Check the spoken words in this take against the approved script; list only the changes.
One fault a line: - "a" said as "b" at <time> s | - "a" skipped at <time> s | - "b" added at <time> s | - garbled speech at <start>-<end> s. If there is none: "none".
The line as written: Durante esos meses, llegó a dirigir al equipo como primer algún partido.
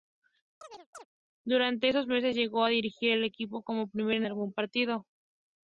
none